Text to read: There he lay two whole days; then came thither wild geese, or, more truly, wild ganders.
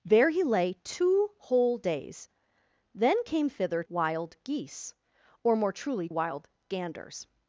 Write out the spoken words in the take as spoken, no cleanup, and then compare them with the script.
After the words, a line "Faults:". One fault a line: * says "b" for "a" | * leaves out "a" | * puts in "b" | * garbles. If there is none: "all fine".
There he lay two whole days; then came thither wild geese, or, more truly, wild ganders.
Faults:
all fine